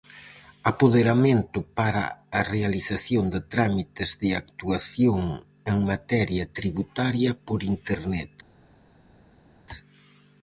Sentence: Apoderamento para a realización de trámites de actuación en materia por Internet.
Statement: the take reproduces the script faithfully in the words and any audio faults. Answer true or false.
false